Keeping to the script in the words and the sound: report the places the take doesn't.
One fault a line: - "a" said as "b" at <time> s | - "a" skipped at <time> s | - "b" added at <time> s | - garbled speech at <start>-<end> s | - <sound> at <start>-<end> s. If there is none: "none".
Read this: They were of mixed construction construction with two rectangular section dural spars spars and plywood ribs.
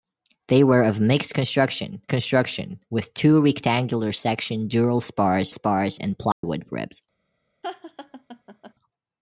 - dropout at 6.3-6.4 s
- laugh at 7.6-8.7 s